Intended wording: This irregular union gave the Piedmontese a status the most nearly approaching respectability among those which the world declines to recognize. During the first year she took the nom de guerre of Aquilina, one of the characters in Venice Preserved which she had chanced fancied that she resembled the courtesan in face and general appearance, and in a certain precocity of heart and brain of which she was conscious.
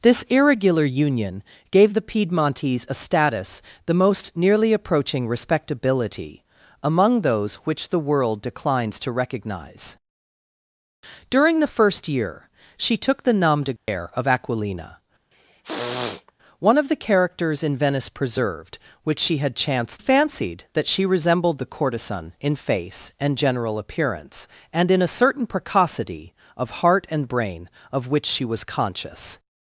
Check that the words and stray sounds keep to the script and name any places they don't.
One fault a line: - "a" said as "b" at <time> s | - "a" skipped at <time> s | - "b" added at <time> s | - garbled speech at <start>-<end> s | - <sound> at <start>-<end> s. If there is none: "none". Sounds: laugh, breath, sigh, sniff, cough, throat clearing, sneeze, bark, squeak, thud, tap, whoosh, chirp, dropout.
- dropout at 13.8-13.9 s
- throat clearing at 15.3-16.3 s